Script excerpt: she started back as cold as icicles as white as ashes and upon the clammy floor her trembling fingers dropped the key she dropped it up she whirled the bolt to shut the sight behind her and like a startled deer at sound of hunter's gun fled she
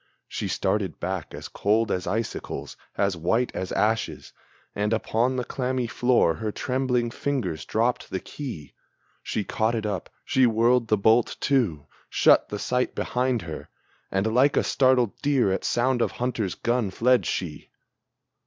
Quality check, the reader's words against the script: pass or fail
fail